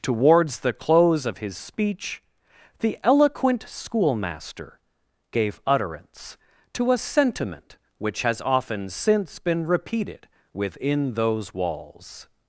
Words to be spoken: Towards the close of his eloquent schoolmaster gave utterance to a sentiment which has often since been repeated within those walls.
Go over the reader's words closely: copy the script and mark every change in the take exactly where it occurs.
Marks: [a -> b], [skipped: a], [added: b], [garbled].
Towards the close of his [added: speech the] eloquent schoolmaster gave utterance to a sentiment which has often since been repeated within those walls.